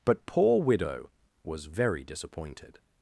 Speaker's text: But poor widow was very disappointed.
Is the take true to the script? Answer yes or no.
yes